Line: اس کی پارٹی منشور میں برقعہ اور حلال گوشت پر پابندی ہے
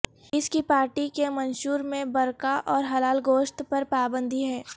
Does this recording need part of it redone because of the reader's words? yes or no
yes